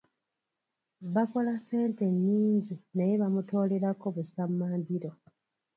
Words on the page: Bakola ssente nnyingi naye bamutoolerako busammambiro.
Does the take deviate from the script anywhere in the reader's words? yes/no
no